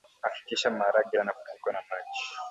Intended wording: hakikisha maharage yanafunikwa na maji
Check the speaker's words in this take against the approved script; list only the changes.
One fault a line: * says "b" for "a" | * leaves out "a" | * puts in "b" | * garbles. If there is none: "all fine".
all fine